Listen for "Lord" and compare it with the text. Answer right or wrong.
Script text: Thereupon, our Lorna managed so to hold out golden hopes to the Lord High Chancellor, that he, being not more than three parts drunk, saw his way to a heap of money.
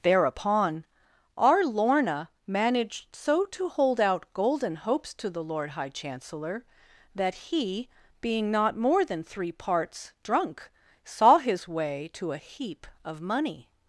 right